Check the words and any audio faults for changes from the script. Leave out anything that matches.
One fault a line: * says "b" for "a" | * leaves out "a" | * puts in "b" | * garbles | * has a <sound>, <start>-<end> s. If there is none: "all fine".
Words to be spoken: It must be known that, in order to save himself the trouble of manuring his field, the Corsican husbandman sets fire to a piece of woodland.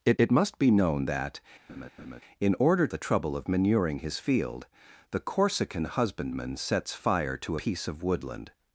* puts in "it"
* has a laugh, 1.7-2.2 s
* leaves out "to save himself"
* leaves out "a"